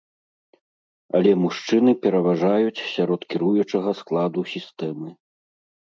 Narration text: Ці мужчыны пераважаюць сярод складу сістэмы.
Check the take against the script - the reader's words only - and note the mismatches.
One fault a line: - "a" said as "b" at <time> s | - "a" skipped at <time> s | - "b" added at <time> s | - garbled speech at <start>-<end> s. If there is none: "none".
- "Ці" said as "Але" at 1.2 s
- "кіруючага" added at 3.4 s